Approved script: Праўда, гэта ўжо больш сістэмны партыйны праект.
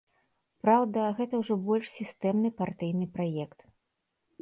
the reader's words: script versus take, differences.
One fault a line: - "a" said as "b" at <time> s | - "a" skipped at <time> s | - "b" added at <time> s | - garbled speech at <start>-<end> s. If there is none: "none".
none